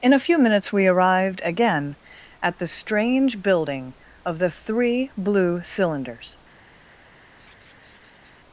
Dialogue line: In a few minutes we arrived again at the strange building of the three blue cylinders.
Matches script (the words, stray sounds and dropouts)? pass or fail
fail